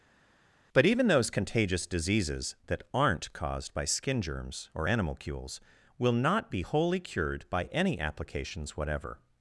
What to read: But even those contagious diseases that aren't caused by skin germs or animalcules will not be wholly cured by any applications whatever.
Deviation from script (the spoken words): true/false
false